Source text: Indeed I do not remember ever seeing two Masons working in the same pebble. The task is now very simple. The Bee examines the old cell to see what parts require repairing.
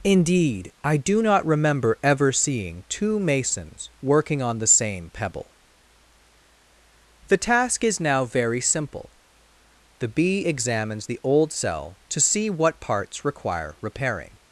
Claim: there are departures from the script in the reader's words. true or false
true